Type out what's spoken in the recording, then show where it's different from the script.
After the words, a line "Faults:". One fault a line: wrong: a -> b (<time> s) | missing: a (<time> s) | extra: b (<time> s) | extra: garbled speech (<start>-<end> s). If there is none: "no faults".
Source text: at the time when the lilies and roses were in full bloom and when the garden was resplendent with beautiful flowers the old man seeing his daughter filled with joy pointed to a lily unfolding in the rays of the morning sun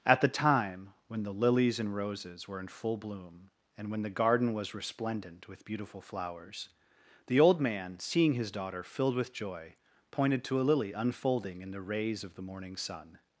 at the time when the lilies and roses were in full bloom and when the garden was resplendent with beautiful flowers the old man seeing his daughter filled with joy pointed to a lily unfolding in the rays of the morning sun
Faults:
no faults